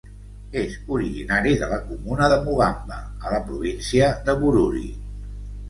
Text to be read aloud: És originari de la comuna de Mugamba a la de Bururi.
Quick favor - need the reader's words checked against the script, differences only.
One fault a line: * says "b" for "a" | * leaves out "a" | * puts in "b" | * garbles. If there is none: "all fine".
* puts in "província"